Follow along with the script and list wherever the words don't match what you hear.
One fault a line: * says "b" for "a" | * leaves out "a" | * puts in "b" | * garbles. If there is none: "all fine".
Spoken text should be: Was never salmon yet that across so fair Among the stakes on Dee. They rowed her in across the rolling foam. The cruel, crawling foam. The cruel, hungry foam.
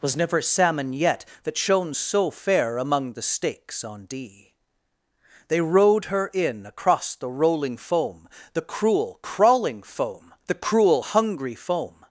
* says "shone" for "across"